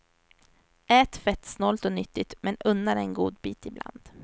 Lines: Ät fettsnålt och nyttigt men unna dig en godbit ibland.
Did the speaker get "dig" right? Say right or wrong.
right